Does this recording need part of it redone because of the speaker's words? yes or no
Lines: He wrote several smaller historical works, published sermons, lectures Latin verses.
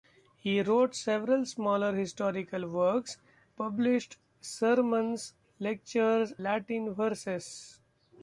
no